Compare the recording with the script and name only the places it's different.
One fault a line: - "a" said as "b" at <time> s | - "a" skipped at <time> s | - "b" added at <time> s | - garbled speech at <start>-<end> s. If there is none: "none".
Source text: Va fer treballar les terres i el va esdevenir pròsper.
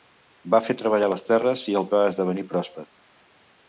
none